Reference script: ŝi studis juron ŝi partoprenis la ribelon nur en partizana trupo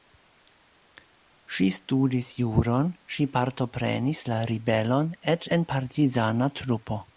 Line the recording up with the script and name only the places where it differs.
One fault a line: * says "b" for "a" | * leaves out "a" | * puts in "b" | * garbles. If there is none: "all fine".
* says "eĉ" for "nur"